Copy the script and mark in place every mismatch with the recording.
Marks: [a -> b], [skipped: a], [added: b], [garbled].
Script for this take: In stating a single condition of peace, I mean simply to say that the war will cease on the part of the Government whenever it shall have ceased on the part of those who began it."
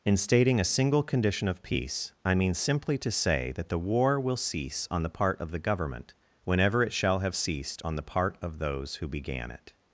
In stating a single condition of peace, I mean simply to say that the war will cease on the part of the Government whenever it shall have ceased on the part of those who began it."